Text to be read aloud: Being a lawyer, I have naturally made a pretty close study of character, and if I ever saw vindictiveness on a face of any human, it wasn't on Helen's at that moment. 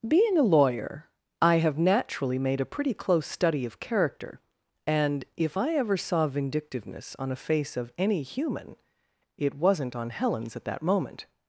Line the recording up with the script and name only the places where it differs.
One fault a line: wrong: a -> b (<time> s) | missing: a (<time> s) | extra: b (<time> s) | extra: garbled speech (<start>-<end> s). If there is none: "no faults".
no faults